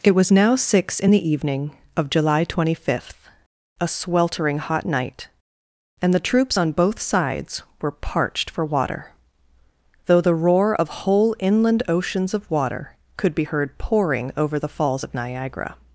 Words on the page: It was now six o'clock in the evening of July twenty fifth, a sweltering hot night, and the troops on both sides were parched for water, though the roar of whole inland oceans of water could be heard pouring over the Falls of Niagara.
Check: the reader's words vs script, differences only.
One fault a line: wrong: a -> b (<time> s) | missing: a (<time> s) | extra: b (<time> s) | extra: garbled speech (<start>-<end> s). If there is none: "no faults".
missing: o'clock (1.0 s)